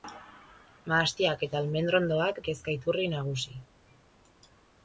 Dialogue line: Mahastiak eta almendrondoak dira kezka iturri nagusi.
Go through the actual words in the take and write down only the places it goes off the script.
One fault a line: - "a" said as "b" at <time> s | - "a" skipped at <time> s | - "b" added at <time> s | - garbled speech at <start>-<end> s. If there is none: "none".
- "dira" skipped at 2.4 s